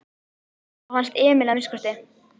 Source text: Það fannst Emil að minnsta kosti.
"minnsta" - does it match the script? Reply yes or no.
yes